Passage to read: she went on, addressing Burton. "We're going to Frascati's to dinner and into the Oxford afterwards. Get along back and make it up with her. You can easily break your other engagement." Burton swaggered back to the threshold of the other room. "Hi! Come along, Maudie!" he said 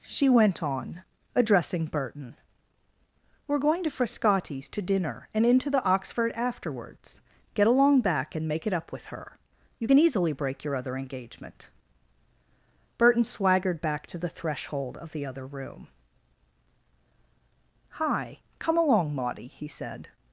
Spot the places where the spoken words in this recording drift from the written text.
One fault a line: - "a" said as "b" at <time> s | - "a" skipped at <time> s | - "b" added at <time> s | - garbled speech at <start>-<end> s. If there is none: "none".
none